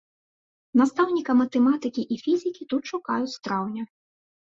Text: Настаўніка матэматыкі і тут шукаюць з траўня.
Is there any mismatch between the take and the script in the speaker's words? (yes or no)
yes